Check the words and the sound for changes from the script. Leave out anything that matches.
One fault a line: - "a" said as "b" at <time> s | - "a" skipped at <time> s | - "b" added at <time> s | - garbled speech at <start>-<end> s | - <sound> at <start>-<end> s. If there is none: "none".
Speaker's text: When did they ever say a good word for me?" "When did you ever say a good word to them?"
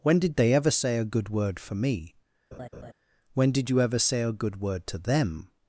- laugh at 2.5-2.9 s